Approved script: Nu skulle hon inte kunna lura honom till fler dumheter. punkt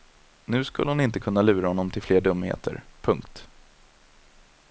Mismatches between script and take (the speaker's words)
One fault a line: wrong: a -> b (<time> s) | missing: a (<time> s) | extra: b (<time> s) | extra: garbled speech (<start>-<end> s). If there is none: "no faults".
no faults